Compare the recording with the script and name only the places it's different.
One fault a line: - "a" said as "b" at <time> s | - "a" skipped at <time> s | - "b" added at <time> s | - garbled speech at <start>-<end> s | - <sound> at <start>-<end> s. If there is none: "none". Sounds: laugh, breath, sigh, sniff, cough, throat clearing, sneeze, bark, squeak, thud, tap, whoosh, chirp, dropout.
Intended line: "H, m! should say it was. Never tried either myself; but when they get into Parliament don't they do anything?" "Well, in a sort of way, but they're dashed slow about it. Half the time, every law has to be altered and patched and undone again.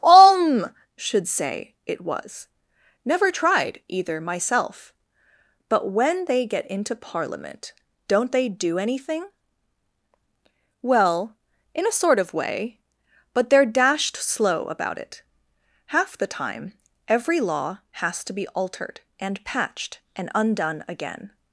- "H m" said as "Om" at 0.0 s